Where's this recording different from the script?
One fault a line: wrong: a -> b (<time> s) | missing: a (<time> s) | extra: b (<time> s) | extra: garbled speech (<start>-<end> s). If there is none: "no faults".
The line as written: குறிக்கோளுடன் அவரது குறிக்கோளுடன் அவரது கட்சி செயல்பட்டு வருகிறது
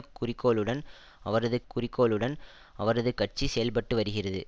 no faults